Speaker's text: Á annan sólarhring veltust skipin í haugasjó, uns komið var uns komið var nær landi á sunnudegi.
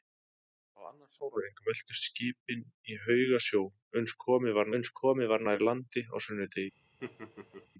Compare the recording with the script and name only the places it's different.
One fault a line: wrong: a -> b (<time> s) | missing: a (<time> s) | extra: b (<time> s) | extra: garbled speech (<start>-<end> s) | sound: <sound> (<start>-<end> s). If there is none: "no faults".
sound: laugh (7.0-7.7 s)